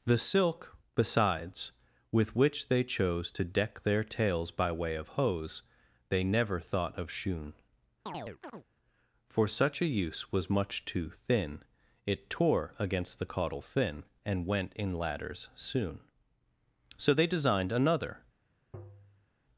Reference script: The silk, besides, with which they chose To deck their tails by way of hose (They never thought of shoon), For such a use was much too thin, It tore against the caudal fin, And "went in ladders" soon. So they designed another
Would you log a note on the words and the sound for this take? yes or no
yes